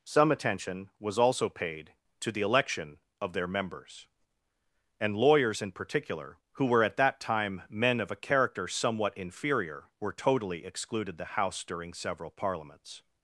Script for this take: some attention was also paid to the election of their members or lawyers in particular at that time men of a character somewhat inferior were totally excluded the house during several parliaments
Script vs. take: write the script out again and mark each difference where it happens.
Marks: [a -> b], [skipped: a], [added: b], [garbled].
some attention was also paid to the election of their members [or -> and] lawyers in particular [added: who were] at that time men of a character somewhat inferior were totally excluded the house during several parliaments